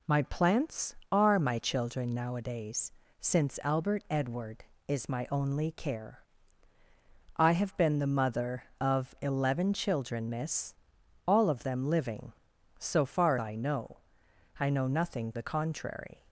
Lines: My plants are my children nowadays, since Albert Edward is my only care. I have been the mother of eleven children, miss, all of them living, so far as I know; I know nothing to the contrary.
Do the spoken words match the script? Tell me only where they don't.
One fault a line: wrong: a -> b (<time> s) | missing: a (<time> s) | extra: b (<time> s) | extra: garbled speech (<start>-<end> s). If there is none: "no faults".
missing: as (13.4 s)
missing: to (15.3 s)